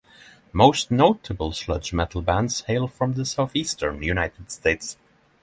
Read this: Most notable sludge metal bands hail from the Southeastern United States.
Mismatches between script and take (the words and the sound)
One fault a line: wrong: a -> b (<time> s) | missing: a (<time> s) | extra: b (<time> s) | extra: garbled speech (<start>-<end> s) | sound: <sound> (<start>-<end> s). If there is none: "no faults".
no faults